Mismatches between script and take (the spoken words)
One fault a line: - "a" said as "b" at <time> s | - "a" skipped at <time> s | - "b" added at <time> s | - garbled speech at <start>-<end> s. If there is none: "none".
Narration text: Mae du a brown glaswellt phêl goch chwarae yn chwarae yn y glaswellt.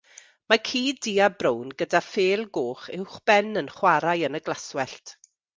- "ci" added at 0.7 s
- "glaswellt" said as "gyda" at 1.8 s
- "chwarae" said as "uwchben" at 3.0 s